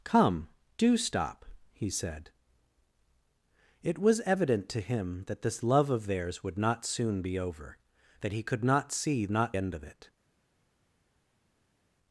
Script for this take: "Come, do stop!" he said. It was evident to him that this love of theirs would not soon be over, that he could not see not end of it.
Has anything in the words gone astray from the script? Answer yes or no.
no